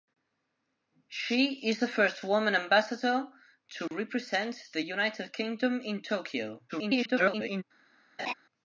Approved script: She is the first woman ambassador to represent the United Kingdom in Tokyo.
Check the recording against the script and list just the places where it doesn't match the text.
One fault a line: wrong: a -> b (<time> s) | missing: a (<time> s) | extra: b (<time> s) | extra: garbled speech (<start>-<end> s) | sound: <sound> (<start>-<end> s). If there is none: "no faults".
sound: dropout (3.9-3.9 s)
extra: garbled speech (6.7-7.6 s)
sound: laugh (8.2-8.3 s)